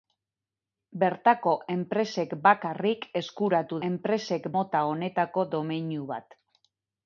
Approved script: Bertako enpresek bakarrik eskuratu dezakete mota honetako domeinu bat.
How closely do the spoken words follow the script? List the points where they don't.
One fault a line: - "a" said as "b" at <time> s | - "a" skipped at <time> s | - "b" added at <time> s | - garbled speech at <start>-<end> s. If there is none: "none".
- "dezakete" said as "enpresek" at 3.9 s